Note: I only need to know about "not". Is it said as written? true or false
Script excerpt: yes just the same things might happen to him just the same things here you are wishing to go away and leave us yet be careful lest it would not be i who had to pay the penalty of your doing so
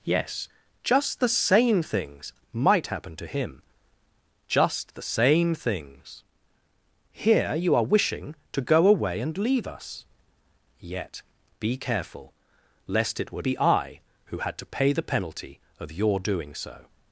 false